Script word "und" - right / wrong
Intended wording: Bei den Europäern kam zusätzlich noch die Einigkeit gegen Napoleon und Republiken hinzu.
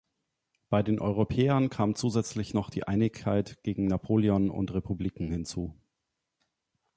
right